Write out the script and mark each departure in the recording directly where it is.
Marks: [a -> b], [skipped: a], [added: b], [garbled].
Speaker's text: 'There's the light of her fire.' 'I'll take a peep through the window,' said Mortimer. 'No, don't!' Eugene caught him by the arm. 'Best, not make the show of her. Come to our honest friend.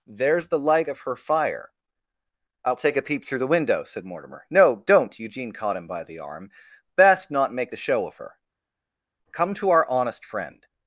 'There's the light of her fire.' 'I'll take a peep through the window,' said Mortimer. 'No, don't!' Eugene caught him by the arm. 'Best, not make the show of her. Come to our honest friend.